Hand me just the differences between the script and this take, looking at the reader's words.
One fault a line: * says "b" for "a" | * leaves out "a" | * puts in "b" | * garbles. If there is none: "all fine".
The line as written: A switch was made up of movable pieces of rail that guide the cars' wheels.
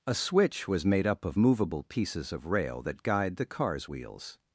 all fine